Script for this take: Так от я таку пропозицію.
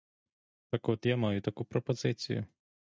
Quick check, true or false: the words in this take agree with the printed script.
false